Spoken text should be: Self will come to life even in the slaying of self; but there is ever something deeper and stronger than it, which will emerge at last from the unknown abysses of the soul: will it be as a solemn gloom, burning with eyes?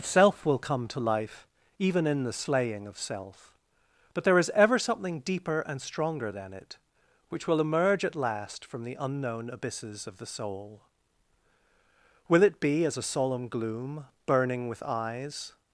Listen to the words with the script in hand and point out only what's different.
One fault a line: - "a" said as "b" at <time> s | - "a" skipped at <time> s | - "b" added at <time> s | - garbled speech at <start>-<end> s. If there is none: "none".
none